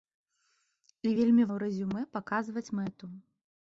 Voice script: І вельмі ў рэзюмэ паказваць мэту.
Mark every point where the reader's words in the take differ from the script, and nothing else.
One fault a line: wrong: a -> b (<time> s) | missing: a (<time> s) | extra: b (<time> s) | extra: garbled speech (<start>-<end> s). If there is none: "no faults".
no faults